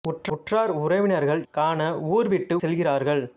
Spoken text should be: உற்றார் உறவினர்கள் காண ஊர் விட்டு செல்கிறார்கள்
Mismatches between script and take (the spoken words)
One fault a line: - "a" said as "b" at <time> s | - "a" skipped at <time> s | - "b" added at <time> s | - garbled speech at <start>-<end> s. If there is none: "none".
none